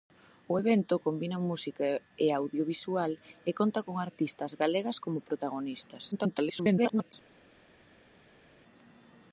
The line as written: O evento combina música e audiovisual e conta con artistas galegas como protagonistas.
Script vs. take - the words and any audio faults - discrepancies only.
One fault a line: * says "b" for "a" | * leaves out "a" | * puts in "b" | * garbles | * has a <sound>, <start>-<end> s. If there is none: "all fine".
* garbles